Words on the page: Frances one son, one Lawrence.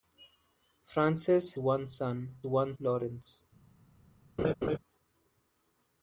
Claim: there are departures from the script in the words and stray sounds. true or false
true